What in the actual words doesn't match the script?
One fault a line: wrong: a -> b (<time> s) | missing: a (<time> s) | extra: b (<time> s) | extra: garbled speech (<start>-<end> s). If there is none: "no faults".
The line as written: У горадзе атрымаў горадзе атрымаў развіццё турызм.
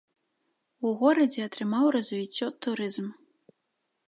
missing: горадзе атрымаў (1.9 s)